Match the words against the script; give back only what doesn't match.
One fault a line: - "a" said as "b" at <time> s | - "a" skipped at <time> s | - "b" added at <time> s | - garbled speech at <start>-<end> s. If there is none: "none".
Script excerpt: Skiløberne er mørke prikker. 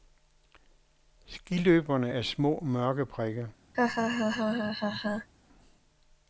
- "små" added at 2.2 s